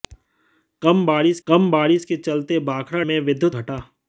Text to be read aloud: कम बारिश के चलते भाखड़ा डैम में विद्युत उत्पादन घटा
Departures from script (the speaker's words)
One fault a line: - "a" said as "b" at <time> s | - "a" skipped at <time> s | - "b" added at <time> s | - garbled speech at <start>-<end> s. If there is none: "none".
- "कम बारिश" added at 1.5 s
- "डैम" skipped at 3.0 s
- "उत्पादन" skipped at 3.6 s